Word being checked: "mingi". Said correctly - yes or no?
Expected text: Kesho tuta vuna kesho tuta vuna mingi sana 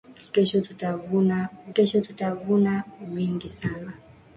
yes